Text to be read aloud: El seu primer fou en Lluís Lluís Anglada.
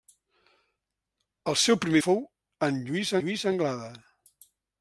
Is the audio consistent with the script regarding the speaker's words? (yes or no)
yes